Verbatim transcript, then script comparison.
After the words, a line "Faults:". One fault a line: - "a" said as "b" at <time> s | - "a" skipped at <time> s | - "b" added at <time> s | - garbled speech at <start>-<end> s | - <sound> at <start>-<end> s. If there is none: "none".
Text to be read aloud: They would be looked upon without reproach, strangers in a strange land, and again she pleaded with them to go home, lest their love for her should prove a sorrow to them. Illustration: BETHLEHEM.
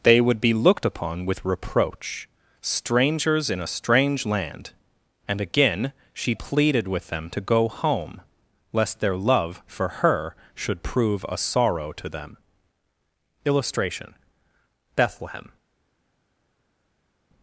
They would be looked upon with reproach, strangers in a strange land, and again she pleaded with them to go home, lest their love for her should prove a sorrow to them. Illustration: BETHLEHEM.
Faults:
- "without" said as "with" at 1.2 s